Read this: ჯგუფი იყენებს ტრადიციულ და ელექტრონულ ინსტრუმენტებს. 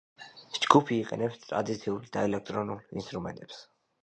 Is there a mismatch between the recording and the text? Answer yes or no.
no